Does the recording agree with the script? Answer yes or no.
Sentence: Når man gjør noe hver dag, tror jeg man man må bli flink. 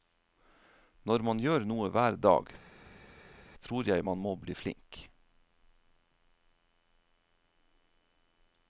no